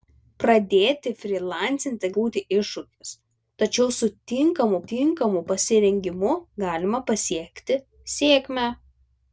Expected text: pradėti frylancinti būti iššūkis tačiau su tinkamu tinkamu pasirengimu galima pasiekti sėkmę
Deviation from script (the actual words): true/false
false